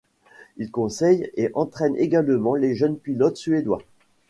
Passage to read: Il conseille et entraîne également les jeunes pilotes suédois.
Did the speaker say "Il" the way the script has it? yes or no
yes